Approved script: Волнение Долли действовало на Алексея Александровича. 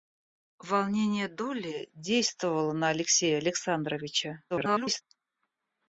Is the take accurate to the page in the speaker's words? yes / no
no